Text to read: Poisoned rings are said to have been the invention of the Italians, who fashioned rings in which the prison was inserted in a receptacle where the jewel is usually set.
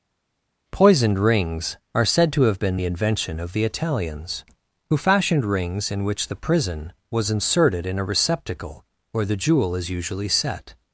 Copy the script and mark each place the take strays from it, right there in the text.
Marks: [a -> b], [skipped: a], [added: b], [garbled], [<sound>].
Poisoned rings are said to have been the invention of the Italians, who fashioned rings in which the prison was inserted in a receptacle where the jewel is usually set.